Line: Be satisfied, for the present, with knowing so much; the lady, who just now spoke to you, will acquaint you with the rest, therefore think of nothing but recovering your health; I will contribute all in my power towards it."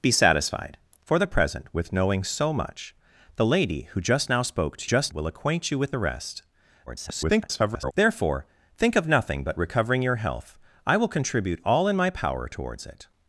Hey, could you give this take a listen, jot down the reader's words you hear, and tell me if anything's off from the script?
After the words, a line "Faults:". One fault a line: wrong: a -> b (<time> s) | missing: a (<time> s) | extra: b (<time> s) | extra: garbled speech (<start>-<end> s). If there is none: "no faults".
Be satisfied, for the present, with knowing so much; the lady, who just now spoke to just, will acquaint you with the rest, [garbled] therefore think of nothing but recovering your health; I will contribute all in my power towards it."
Faults:
wrong: you -> just (4.8 s)
extra: garbled speech (6.9-7.9 s)